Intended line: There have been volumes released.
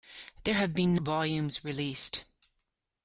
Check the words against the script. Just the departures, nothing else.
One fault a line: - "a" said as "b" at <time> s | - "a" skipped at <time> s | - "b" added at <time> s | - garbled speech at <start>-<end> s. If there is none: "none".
none